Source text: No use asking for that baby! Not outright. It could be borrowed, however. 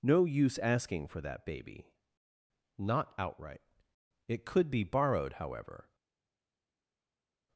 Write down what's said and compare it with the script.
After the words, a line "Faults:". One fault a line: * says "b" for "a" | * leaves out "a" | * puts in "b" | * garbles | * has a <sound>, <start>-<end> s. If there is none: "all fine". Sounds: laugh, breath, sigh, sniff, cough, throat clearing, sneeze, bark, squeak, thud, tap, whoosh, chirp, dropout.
No use asking for that baby! Not outright. It could be borrowed, however.
Faults:
all fine